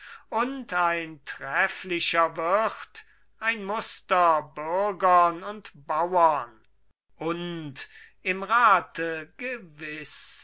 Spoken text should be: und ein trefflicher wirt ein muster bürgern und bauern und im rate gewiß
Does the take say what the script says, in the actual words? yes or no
yes